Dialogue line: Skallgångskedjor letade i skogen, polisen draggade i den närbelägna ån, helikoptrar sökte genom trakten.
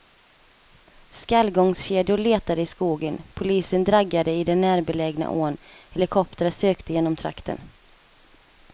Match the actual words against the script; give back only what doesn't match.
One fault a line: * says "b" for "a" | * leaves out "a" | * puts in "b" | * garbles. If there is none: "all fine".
all fine